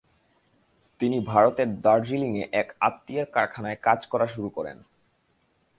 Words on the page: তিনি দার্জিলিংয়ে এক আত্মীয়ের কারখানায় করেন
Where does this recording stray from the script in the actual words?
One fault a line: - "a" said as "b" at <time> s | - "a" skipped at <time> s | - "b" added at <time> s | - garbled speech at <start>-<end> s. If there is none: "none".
- "ভারতের" added at 1.2 s
- "কাজ করা শুরু" added at 3.8 s